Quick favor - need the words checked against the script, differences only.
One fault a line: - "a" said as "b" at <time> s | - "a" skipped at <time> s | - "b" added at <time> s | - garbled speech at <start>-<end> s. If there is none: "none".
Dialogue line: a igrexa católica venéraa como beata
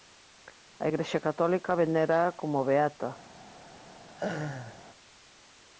none